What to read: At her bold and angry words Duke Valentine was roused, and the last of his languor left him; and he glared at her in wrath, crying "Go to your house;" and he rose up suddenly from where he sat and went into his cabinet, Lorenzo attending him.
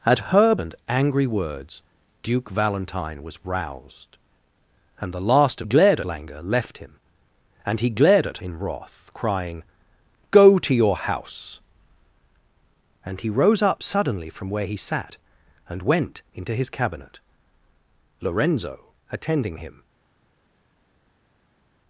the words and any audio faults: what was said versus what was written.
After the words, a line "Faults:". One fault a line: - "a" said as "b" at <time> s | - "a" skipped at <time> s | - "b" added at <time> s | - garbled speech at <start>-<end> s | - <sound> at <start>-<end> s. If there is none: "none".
At her and angry words Duke Valentine was roused, and the last of glared languor left him; and he glared at in wrath, crying "Go to your house;" and he rose up suddenly from where he sat and went into his cabinet, Lorenzo attending him.
Faults:
- "bold" skipped at 0.6 s
- "his" said as "glared" at 5.6 s
- "her" skipped at 8.4 s